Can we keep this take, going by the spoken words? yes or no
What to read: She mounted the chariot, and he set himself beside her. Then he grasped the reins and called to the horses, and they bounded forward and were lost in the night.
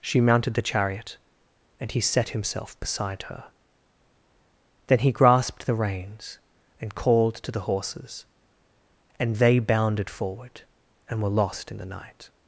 yes